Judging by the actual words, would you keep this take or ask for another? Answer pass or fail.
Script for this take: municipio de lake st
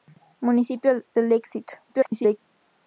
fail